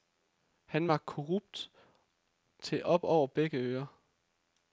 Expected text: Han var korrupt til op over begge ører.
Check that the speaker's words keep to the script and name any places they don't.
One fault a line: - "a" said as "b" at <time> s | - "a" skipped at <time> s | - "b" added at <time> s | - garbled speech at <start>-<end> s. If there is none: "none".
none